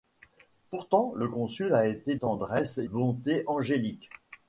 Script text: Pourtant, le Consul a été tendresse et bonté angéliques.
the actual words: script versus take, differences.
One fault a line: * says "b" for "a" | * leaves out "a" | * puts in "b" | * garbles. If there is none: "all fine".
all fine